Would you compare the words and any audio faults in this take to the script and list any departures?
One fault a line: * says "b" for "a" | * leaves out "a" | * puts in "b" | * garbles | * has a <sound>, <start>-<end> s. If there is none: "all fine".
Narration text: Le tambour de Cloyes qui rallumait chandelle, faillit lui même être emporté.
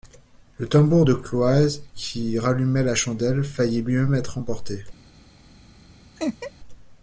* puts in "la"
* has a laugh, 6.2-6.5 s